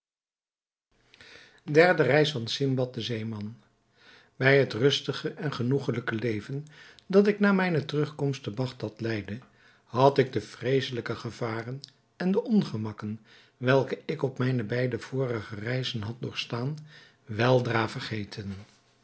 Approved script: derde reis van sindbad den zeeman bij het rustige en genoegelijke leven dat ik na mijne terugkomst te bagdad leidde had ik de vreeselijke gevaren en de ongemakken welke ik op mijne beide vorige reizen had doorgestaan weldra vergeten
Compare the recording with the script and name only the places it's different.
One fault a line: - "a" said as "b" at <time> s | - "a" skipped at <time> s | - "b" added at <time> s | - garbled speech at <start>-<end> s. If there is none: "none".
none